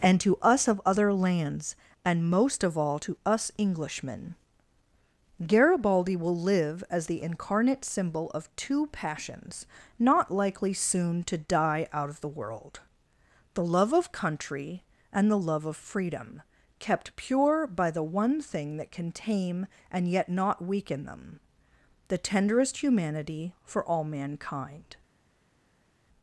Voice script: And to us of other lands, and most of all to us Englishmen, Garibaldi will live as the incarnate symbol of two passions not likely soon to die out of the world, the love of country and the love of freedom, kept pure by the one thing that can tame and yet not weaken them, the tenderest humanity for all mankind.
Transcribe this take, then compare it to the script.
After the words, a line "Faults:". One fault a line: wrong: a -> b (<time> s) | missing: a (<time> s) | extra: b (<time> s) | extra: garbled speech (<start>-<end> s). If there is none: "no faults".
And to us of other lands, and most of all to us Englishmen, Garibaldi will live as the incarnate symbol of two passions not likely soon to die out of the world, the love of country and the love of freedom, kept pure by the one thing that can tame and yet not weaken them, the tenderest humanity for all mankind.
Faults:
no faults